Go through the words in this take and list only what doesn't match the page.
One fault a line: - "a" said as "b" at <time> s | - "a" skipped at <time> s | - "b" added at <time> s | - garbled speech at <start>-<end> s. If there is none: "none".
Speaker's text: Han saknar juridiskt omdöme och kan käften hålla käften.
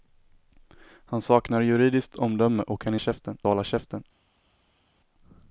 none